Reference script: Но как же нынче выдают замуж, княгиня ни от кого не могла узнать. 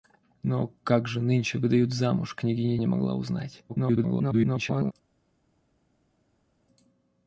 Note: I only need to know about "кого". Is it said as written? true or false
false